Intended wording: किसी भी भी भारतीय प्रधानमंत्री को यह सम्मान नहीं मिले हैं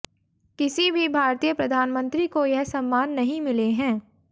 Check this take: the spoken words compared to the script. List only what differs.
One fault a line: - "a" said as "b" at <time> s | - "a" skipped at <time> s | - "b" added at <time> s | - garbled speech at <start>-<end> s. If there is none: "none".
- "भी" skipped at 1.1 s